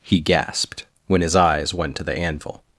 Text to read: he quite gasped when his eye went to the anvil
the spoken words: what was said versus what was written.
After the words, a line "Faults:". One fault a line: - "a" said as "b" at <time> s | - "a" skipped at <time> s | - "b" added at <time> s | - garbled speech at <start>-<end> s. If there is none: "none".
he gasped when his eyes went to the anvil
Faults:
- "quite" skipped at 0.2 s
- "eye" said as "eyes" at 1.4 s